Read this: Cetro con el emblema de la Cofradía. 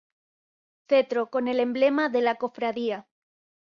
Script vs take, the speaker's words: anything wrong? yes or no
no